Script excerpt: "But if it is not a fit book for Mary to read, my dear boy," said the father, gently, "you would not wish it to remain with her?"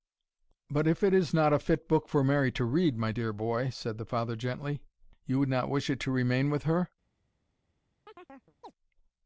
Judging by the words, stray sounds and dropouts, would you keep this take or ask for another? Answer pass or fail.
fail